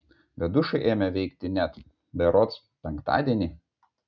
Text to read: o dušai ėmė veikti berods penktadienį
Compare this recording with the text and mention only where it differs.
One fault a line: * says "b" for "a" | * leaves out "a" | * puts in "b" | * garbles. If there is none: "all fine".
* says "bet" for "o"
* puts in "net"